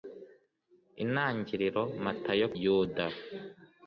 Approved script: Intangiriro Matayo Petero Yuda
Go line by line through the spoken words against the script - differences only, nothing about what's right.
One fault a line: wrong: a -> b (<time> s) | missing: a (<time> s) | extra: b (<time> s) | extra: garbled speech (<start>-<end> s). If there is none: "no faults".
missing: Petero (2.5 s)